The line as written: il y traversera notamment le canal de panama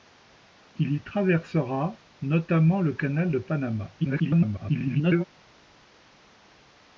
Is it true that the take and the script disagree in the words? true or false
true